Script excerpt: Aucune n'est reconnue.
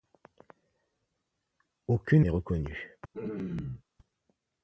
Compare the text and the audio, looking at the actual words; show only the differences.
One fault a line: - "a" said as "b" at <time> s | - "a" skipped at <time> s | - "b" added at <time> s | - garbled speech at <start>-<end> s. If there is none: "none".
none